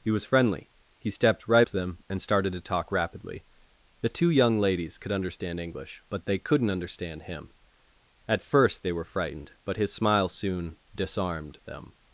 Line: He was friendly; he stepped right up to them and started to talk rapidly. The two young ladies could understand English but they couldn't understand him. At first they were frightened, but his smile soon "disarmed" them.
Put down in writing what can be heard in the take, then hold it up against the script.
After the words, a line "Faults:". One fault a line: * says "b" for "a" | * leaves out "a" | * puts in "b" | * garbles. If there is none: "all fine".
He was friendly; he stepped right to them and started to talk rapidly. The two young ladies could understand English but they couldn't understand him. At first they were frightened, but his smile soon "disarmed" them.
Faults:
* leaves out "up"